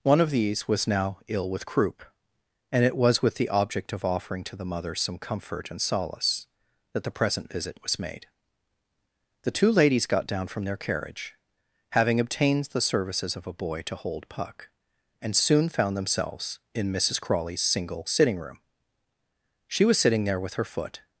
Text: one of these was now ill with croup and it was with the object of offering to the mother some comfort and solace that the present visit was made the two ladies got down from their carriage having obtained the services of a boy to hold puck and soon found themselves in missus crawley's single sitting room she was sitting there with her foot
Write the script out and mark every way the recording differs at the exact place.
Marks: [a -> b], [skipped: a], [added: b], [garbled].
one of these was now ill with croup and it was with the object of offering to the mother some comfort and solace that the present visit was made the two ladies got down from their carriage having obtained the services of a boy to hold puck and soon found themselves in missus crawley's single sitting room she was sitting there with her foot